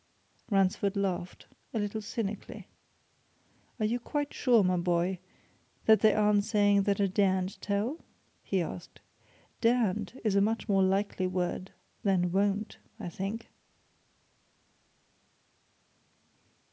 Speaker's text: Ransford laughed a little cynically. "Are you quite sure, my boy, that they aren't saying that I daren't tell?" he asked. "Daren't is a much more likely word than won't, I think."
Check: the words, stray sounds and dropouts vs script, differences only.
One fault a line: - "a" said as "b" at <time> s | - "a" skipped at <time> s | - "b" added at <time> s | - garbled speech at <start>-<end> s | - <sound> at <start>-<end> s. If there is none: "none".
none